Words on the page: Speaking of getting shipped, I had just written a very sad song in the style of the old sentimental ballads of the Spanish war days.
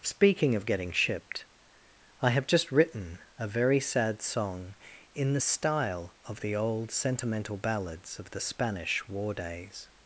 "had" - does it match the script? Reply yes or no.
no